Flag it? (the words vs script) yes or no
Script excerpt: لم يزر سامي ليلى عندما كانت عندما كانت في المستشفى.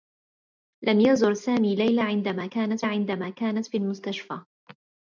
no